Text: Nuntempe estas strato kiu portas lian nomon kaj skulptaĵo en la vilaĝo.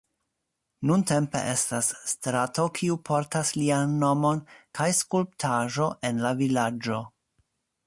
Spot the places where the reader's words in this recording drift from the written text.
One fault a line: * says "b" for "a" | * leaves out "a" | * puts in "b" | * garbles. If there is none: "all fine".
all fine